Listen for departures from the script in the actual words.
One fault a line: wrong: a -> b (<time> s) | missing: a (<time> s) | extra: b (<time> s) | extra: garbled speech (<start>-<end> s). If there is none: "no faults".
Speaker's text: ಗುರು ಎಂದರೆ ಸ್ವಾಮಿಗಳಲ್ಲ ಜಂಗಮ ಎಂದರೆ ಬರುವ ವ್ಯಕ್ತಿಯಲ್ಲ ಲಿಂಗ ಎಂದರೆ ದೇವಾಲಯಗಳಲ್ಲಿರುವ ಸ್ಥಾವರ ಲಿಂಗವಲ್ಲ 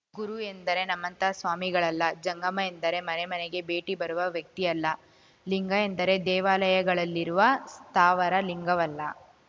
extra: ನಮ್ಮಂಥ (0.8 s)
extra: ಮನೆ ಮನೆಗೆ ಭೇಟಿ (3.0 s)